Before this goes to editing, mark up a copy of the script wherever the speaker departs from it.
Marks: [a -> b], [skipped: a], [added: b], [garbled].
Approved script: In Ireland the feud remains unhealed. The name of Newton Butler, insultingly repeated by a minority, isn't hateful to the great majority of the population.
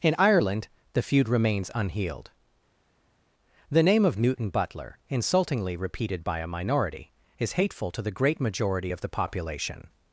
In Ireland the feud remains unhealed. The name of Newton Butler, insultingly repeated by a minority, [isn't -> is] hateful to the great majority of the population.